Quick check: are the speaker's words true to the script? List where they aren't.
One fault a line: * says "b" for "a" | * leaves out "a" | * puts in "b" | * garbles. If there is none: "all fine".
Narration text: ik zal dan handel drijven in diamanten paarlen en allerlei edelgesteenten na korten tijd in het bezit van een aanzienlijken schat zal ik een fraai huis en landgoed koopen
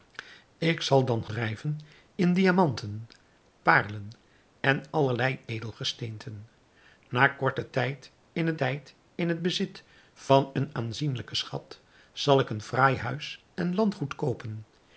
* leaves out "handel"
* puts in "tijd in het"